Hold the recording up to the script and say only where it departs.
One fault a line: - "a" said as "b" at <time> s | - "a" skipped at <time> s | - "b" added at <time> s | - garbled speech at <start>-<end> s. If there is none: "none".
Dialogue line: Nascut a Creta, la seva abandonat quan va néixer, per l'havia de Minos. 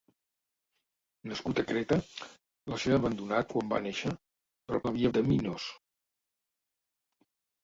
none